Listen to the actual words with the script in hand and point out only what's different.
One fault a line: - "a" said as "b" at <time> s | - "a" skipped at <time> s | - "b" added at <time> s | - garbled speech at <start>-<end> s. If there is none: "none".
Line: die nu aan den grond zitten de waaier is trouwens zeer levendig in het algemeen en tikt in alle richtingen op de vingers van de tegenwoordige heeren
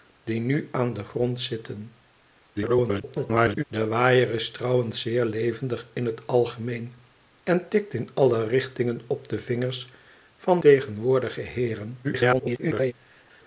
- garbled speech at 2.5-3.6 s
- "de" skipped at 10.6 s
- garbled speech at 12.0-12.9 s